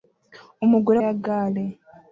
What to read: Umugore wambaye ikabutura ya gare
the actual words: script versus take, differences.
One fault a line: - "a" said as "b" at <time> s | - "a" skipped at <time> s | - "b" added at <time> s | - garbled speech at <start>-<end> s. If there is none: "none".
- "wambaye ikabutura" skipped at 1.0 s